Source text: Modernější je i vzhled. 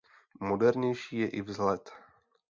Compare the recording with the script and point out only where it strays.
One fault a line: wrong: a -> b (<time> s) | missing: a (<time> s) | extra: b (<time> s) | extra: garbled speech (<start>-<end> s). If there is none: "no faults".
no faults